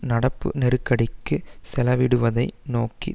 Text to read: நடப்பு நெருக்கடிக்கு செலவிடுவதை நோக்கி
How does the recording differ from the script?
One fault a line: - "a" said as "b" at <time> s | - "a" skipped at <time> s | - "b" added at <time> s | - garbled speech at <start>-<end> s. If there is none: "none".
none